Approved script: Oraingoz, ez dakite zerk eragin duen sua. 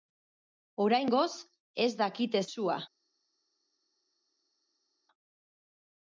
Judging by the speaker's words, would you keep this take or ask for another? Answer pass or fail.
fail